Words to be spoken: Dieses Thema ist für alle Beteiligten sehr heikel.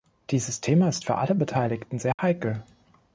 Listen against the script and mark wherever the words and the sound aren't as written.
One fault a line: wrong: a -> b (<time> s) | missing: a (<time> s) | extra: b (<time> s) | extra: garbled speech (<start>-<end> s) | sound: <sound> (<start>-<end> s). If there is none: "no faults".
sound: dropout (2.1-2.2 s)